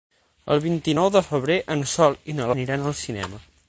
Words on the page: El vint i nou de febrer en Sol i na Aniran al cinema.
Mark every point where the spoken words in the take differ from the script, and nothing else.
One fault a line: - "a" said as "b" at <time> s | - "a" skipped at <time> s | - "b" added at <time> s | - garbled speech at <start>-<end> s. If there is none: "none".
none